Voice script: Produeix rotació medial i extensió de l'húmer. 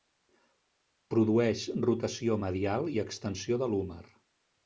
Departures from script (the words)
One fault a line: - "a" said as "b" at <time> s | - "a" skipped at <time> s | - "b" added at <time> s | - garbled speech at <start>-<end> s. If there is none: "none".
none